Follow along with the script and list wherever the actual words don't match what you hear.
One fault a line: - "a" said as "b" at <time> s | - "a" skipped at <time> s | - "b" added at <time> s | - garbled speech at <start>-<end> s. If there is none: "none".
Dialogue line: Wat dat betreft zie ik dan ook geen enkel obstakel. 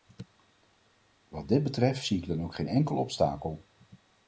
- "dat" said as "dit" at 1.5 s